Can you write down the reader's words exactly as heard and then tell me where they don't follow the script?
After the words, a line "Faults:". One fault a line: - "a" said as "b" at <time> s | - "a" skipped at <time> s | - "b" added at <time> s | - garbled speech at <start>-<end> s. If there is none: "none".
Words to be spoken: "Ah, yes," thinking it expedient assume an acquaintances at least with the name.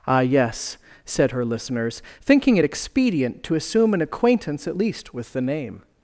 "Ah, yes," said her listeners, thinking it expedient to assume an acquaintance at least with the name.
Faults:
- "said her listeners" added at 1.1 s
- "to" added at 3.4 s
- "acquaintances" said as "acquaintance" at 4.0 s